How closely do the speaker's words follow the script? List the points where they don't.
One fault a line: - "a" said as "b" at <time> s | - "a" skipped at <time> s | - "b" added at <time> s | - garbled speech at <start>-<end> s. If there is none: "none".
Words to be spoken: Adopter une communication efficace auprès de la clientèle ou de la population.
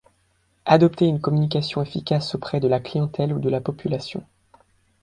none